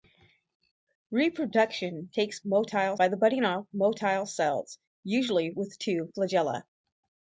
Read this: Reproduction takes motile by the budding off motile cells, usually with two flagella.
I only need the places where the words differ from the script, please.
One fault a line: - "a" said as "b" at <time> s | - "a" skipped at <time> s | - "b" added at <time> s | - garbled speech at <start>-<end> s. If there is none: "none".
none